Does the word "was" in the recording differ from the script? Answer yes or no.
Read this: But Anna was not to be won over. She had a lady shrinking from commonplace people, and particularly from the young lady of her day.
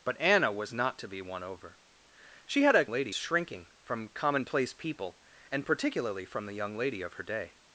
no